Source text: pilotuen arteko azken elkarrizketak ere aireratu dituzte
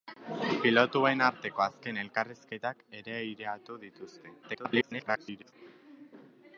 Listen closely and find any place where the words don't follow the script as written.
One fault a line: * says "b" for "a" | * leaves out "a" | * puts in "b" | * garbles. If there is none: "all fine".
* garbles